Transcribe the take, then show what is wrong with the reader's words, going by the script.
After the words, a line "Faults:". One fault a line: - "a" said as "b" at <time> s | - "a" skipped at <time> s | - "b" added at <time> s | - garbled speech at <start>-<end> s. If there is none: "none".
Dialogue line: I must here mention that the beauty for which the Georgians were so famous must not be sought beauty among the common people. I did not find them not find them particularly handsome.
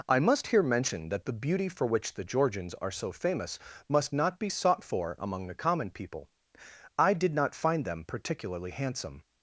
I must here mention that the beauty for which the Georgians are so famous must not be sought for among the common people. I did not find them particularly handsome.
Faults:
- "were" said as "are" at 2.8 s
- "beauty" said as "for" at 4.8 s
- "not find them" skipped at 8.1 s